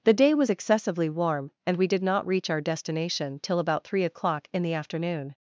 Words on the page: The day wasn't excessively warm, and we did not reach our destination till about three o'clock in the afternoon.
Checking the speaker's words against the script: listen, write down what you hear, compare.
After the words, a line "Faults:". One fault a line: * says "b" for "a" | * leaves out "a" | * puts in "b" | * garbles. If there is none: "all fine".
The day was excessively warm, and we did not reach our destination till about three o'clock in the afternoon.
Faults:
* says "was" for "wasn't"